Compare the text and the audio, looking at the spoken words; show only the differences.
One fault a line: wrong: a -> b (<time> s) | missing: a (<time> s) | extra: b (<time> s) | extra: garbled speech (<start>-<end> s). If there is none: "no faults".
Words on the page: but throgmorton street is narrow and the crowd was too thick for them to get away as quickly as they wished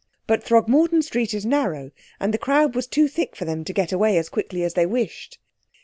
no faults